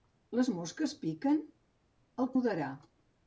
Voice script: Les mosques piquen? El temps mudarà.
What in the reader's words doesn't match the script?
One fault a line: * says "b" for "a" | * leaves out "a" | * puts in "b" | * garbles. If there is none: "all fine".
* leaves out "temps"